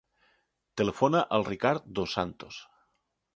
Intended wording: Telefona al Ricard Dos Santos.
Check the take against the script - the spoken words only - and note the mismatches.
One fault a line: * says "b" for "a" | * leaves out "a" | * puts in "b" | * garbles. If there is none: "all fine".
all fine